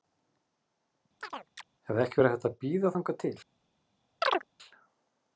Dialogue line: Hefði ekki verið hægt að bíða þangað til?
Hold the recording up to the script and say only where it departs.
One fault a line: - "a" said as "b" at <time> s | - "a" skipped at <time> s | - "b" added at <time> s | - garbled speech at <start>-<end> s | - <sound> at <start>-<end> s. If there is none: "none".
- chirp at 1.2-1.7 s
- chirp at 4.2-4.4 s